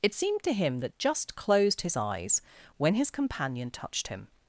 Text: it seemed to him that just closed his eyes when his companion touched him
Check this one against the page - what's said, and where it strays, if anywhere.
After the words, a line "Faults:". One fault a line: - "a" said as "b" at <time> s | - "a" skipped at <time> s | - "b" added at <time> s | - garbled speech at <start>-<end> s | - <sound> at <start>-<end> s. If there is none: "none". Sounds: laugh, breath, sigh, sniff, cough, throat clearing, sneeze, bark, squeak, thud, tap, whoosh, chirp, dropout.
it seemed to him that just closed his eyes when his companion touched him
Faults:
none